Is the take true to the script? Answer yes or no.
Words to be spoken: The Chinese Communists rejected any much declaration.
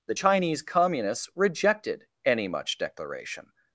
yes